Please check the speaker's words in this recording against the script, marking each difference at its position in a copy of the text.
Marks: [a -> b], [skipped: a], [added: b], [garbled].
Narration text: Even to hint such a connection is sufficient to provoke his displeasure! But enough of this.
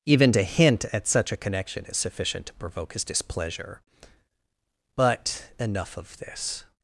Even to hint [added: at] such a connection is sufficient to provoke his displeasure! But enough of this.